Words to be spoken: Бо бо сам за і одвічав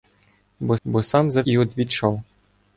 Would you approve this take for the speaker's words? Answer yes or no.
yes